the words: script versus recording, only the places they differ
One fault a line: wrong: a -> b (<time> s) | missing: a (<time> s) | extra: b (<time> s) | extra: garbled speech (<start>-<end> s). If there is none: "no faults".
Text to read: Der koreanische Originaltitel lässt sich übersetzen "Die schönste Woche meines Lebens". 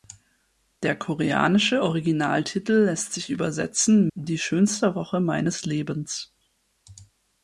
no faults